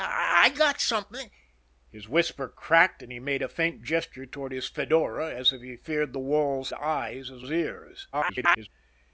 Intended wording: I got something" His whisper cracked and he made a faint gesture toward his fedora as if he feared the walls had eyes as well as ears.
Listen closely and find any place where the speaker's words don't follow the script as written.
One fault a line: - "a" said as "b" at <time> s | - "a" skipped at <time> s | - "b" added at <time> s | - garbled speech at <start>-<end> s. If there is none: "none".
- "had" skipped at 6.7 s
- "well" skipped at 7.4 s
- garbled speech at 8.1-8.7 s